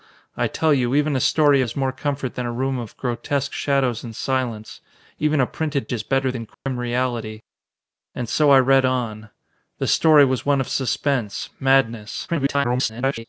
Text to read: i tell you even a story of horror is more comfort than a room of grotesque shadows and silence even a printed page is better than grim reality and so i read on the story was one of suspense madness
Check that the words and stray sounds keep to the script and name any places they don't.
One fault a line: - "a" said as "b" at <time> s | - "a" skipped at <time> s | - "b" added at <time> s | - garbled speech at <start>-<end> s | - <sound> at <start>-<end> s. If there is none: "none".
- "of horror" skipped at 1.6 s
- "page" skipped at 5.9 s
- dropout at 6.5-6.7 s
- garbled speech at 12.3-13.3 s